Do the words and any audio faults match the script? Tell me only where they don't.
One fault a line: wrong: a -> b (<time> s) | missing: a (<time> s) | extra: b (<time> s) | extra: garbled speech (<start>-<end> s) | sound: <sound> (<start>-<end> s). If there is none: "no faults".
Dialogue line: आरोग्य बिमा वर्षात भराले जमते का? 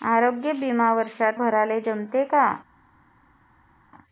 no faults